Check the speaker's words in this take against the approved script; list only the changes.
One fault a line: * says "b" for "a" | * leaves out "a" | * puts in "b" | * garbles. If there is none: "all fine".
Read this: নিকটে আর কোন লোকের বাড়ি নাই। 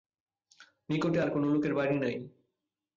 all fine